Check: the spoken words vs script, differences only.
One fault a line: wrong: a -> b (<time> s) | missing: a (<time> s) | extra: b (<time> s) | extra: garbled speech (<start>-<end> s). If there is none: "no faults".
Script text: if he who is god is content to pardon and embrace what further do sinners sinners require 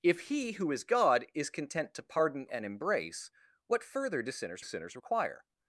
no faults